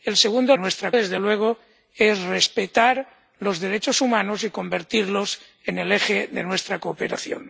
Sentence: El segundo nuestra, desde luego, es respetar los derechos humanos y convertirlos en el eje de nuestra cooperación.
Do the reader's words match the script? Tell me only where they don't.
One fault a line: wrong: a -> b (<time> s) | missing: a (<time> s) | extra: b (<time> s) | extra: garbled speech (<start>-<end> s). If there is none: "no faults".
no faults